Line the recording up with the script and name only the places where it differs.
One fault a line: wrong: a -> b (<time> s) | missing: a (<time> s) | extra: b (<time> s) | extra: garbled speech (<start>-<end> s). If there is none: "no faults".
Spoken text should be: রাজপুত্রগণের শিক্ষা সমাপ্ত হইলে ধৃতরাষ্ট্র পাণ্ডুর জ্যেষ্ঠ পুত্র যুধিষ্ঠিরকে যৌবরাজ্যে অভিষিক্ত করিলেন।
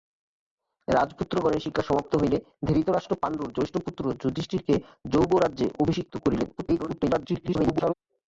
extra: garbled speech (6.6-7.9 s)